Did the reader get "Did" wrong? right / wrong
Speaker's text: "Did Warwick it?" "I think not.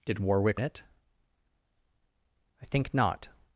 right